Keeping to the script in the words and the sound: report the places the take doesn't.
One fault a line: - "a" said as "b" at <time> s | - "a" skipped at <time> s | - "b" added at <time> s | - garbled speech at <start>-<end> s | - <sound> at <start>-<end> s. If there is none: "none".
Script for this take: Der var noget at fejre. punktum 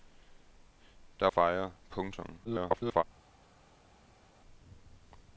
- "var noget at" skipped at 1.3 s
- garbled speech at 2.4-3.0 s